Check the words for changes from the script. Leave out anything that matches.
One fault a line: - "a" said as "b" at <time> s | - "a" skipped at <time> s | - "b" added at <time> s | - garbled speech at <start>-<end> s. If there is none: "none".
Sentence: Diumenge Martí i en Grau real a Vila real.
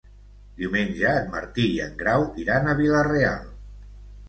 - "en" added at 1.2 s
- "real" said as "iran" at 2.4 s